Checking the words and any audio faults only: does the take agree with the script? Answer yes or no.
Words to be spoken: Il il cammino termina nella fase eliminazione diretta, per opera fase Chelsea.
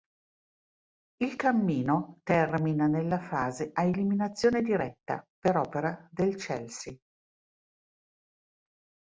no